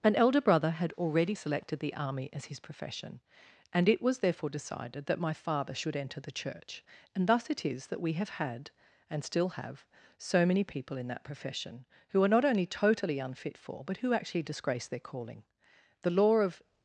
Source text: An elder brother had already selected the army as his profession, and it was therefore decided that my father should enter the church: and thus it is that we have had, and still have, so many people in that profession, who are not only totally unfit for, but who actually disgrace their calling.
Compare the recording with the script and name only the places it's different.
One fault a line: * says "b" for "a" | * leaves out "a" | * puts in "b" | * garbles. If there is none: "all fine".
* puts in "The law of"